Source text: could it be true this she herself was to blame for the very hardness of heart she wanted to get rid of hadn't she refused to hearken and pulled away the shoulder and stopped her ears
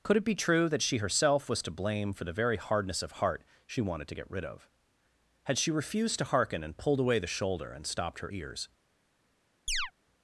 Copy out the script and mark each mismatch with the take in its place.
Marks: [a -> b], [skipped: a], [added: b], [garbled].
could it be true [this -> that] she herself was to blame for the very hardness of heart she wanted to get rid of [hadn't -> had] she refused to hearken and pulled away the shoulder and stopped her ears